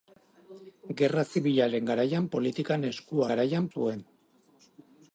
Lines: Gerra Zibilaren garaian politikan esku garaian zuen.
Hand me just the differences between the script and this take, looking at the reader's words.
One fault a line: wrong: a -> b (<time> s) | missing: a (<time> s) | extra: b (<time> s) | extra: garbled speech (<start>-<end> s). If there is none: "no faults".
no faults